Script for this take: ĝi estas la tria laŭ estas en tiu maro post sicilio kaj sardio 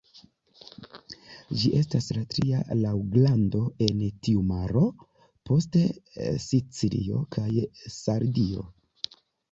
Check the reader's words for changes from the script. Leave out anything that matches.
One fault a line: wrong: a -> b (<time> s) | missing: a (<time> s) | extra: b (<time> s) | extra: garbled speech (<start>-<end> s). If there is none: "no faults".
wrong: estas -> grando (3.1 s)